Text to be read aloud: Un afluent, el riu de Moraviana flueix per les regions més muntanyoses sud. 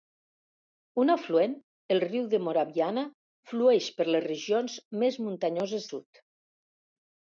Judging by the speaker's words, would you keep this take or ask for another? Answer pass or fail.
pass